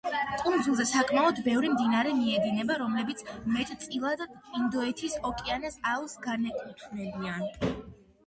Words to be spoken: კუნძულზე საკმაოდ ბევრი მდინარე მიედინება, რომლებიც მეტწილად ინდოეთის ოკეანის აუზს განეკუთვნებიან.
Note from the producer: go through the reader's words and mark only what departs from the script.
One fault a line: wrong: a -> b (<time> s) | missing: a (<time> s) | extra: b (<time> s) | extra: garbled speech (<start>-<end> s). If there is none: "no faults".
no faults